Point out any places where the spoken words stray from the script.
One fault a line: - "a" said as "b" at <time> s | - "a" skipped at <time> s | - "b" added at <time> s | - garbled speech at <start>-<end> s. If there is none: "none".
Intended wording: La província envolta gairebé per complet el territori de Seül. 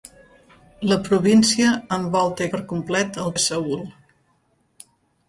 - "gairebé" skipped at 2.5 s
- "territori" skipped at 3.3 s